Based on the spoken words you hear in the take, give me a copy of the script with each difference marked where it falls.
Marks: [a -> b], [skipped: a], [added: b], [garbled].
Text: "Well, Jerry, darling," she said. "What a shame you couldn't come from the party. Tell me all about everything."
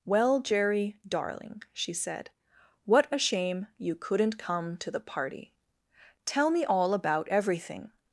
"Well, Jerry, darling," she said. "What a shame you couldn't come [from -> to] the party. Tell me all about everything."